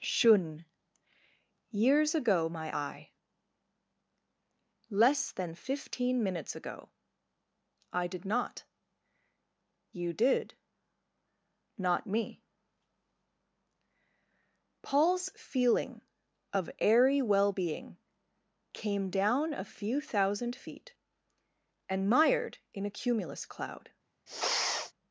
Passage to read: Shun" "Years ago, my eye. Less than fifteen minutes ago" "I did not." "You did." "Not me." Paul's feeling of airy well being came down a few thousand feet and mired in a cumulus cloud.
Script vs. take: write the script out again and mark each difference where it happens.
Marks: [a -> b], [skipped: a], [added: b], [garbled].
Shun" "Years ago, my eye. Less than fifteen minutes ago" "I did not." "You did." "Not me." Paul's feeling of airy well being came down a few thousand feet and mired in a cumulus cloud.